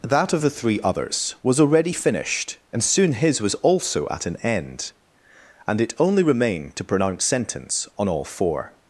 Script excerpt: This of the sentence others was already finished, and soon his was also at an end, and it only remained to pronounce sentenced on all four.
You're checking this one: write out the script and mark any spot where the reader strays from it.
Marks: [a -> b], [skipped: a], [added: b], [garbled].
[This -> That] of the [sentence -> three] others was already finished, and soon his was also at an end, and it only remained to pronounce [sentenced -> sentence] on all four.